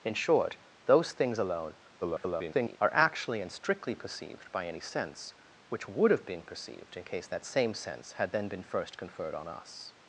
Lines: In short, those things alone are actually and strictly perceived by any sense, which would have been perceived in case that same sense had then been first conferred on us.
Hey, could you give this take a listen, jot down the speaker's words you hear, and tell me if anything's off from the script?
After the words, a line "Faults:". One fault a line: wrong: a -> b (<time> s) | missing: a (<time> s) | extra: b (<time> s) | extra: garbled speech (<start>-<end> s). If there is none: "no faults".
In short, those things alone [garbled] are actually and strictly perceived by any sense, which would have been perceived in case that same sense had then been first conferred on us.
Faults:
extra: garbled speech (2.0-2.8 s)